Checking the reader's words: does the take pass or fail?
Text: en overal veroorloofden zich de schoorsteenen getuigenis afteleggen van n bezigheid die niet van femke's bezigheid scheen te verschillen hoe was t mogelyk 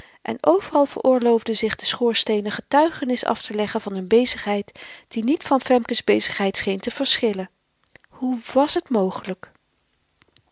pass